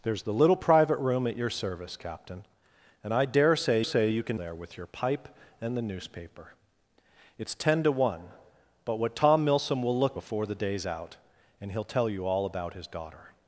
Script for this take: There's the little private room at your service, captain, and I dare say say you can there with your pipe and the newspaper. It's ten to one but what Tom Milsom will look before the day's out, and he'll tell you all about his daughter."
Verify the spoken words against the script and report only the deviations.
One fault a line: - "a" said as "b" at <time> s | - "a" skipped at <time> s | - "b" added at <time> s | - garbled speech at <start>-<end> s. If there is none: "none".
none